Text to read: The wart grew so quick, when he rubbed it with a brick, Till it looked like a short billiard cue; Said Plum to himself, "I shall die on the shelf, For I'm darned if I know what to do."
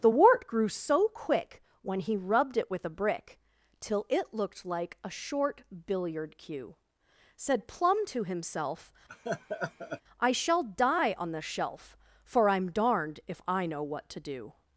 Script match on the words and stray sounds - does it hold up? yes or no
no